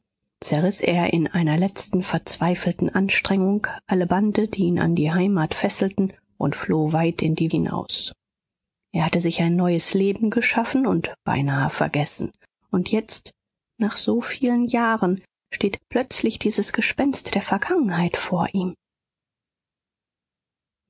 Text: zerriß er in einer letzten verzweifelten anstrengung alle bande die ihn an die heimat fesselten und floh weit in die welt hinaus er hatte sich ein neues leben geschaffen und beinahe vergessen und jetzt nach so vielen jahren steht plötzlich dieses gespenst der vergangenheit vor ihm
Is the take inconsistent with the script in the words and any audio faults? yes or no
yes